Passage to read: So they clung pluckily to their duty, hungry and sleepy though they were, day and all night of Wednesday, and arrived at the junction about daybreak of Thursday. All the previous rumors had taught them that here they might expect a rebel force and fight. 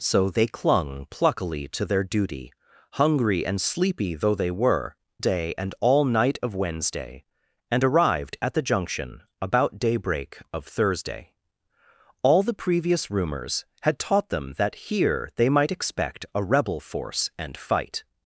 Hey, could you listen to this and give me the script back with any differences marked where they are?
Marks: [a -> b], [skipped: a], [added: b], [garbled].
So they clung pluckily to their duty, hungry and sleepy though they were, day and all night of Wednesday, and arrived at the junction about daybreak of Thursday. All the previous rumors had taught them that here they might expect a rebel force and fight.